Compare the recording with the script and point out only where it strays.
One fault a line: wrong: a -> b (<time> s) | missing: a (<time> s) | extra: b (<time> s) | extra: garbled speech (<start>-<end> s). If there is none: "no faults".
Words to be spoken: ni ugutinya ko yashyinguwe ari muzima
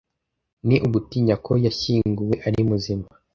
no faults